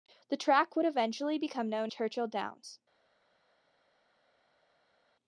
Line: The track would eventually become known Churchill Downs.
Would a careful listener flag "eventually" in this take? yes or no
no